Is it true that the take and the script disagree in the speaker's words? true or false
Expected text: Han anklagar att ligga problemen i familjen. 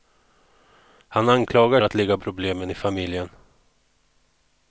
false